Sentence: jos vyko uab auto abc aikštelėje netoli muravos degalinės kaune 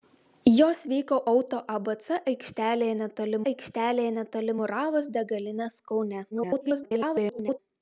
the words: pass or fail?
fail